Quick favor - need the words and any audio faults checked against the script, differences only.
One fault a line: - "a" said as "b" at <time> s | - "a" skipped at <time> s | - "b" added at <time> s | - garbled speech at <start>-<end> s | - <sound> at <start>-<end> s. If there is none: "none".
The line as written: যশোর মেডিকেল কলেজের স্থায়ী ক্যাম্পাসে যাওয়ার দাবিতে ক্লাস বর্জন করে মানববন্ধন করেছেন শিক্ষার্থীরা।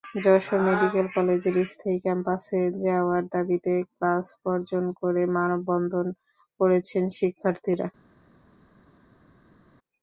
none